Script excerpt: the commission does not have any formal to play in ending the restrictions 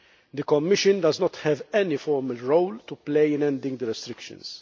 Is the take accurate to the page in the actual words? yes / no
no